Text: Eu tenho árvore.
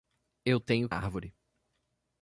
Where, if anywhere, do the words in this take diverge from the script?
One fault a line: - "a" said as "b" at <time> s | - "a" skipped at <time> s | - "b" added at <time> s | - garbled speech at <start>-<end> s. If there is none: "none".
none